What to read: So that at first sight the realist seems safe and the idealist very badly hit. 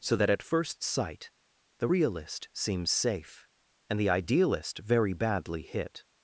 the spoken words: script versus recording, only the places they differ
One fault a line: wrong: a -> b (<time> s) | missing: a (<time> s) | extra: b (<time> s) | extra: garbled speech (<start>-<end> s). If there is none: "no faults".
no faults